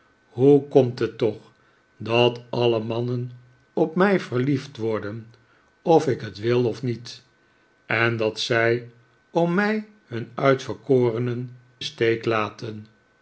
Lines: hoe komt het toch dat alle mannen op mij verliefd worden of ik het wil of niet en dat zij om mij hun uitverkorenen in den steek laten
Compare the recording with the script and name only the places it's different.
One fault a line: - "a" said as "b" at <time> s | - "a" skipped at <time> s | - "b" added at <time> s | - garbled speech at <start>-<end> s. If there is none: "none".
- "in den" skipped at 11.6 s